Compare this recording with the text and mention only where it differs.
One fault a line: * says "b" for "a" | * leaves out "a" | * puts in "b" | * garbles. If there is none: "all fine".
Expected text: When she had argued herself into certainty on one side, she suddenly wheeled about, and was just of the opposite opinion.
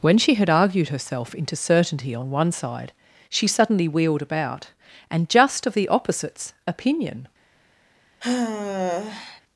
* leaves out "was"
* says "opposites" for "opposite"